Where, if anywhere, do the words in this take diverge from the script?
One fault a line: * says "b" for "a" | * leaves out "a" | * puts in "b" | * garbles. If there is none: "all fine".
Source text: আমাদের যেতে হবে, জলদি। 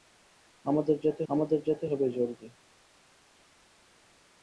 * puts in "আমাদের যেতে"